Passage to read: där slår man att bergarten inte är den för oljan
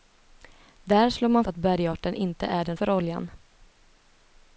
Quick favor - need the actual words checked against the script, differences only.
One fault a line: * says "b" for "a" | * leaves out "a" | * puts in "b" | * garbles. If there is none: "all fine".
all fine